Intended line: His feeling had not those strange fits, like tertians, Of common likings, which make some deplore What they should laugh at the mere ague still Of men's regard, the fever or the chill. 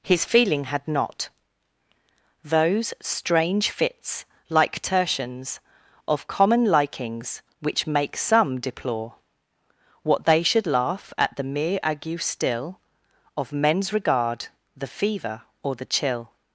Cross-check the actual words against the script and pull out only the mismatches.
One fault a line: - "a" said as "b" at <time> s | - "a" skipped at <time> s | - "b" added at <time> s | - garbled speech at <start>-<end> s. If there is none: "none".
none